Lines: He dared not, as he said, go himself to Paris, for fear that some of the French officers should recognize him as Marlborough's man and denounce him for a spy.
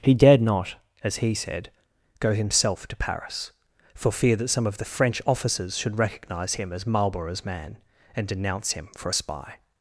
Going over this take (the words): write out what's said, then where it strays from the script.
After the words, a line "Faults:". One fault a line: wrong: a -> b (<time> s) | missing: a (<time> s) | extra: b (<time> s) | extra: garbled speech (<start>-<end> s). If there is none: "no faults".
He dared not, as he said, go himself to Paris, for fear that some of the French officers should recognize him as Marlborough's man and denounce him for a spy.
Faults:
no faults